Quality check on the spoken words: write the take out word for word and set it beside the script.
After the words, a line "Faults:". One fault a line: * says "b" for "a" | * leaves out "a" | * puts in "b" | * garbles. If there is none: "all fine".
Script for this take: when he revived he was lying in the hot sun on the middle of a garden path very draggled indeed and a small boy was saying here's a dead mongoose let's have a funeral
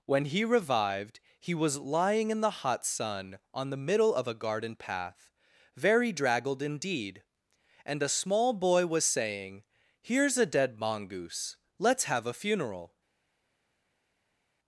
when he revived he was lying in the hot sun on the middle of a garden path very draggled indeed and a small boy was saying here's a dead mongoose let's have a funeral
Faults:
all fine